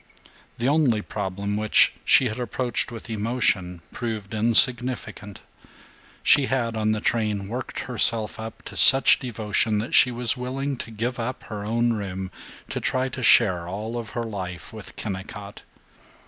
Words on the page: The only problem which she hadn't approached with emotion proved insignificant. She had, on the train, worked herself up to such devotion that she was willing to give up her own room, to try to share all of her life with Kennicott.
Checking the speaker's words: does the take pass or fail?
fail